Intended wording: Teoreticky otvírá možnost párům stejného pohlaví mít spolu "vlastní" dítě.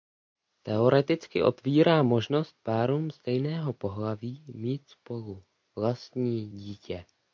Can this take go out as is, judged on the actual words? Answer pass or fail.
pass